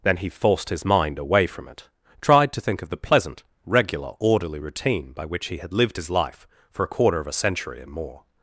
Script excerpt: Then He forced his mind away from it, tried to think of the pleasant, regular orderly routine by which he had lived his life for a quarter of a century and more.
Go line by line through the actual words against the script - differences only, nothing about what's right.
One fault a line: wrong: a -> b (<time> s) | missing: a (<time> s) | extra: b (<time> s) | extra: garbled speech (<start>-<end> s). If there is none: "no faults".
no faults